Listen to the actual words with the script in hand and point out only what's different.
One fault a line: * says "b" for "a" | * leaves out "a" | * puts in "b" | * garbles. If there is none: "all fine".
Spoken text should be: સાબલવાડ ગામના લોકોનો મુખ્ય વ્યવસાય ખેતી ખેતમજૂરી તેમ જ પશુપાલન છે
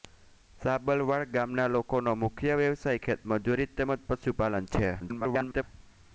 * leaves out "ખેતી"
* garbles